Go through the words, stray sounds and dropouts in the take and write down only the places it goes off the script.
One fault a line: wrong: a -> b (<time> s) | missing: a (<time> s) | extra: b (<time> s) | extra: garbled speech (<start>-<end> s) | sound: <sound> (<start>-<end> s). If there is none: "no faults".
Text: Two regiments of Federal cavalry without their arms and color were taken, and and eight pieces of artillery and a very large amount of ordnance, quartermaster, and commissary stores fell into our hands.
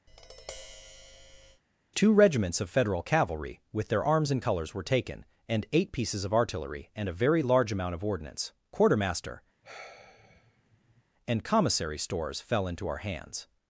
sound: tap (0.1-1.6 s)
wrong: without -> with (3.7 s)
wrong: color -> colors (4.4 s)
missing: and (5.7 s)
sound: sigh (9.6-11.0 s)